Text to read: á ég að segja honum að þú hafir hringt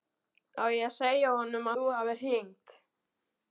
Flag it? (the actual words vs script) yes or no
yes